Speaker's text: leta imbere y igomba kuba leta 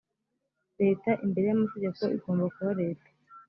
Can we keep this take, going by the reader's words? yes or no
no